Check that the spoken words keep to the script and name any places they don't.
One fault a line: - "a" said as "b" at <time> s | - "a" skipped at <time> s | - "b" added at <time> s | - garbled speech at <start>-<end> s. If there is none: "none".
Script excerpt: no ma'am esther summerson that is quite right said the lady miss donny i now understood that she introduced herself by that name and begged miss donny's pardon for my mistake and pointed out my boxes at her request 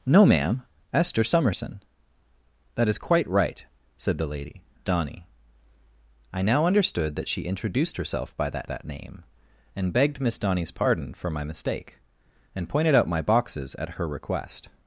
- "miss" skipped at 4.6 s
- "that" added at 8.7 s